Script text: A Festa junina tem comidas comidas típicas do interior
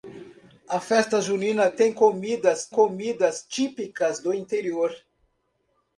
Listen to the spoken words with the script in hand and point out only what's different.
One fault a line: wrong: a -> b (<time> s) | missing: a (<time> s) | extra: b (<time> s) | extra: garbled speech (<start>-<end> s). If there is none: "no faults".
no faults